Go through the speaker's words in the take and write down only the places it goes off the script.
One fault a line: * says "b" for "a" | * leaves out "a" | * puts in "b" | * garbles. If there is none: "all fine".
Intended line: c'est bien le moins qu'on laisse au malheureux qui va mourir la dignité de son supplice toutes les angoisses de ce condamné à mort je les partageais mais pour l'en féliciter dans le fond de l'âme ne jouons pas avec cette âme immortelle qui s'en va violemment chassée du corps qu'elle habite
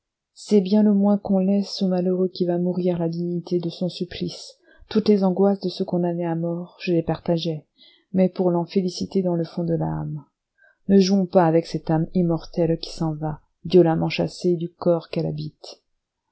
all fine